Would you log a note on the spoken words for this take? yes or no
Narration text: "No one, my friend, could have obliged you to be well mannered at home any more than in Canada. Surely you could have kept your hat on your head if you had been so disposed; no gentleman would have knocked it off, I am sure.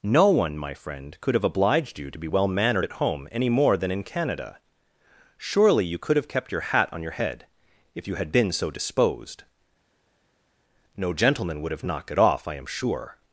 no